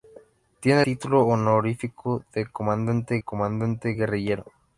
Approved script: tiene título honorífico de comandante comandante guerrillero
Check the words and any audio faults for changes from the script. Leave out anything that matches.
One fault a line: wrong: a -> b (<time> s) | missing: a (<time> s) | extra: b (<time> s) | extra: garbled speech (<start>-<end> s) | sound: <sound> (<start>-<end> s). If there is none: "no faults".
no faults